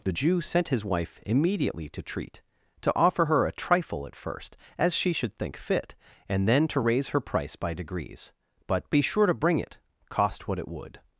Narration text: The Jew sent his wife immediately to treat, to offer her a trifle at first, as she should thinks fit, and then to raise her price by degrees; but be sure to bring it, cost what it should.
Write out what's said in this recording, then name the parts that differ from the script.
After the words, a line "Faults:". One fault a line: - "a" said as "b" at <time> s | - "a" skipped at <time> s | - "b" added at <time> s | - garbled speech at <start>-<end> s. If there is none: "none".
The Jew sent his wife immediately to treat, to offer her a trifle at first, as she should think fit, and then to raise her price by degrees; but be sure to bring it, cost what it would.
Faults:
- "thinks" said as "think" at 5.3 s
- "should" said as "would" at 10.7 s